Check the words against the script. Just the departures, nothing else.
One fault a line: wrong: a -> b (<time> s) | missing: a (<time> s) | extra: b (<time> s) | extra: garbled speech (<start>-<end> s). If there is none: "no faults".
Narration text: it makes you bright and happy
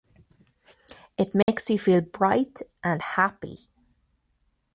extra: feel (1.8 s)